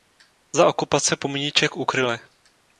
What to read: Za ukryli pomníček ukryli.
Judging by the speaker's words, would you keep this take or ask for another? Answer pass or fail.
fail